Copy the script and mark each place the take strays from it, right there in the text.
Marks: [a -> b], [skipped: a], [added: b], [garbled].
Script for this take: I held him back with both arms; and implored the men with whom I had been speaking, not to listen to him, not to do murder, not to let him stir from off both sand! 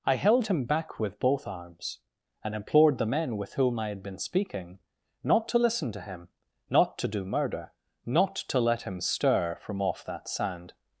I held him back with both arms; and implored the men with whom I had been speaking, not to listen to him, not to do murder, not to let him stir from off [both -> that] sand!